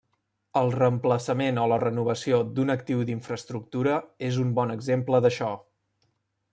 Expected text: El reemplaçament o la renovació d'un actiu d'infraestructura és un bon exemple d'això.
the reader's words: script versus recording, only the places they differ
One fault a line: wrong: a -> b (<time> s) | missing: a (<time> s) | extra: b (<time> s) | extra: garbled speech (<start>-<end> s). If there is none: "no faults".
no faults